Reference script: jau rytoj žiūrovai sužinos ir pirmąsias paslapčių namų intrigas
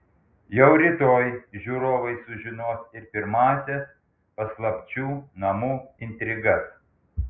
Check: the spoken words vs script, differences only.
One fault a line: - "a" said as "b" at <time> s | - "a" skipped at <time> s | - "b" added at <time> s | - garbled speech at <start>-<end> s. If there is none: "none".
none